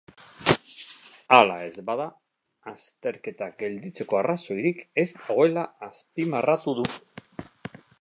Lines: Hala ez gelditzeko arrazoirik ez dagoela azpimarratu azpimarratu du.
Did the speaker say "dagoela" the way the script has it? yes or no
yes